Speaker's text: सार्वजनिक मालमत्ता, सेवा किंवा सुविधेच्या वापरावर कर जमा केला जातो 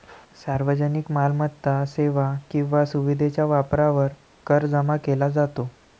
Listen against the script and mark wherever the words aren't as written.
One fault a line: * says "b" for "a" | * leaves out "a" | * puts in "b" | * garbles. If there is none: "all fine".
all fine